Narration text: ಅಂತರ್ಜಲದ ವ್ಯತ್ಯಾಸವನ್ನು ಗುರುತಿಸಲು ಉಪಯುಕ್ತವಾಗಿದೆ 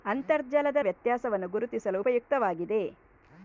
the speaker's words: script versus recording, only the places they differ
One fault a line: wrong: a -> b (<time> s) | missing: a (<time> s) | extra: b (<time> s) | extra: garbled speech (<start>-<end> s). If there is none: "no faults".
no faults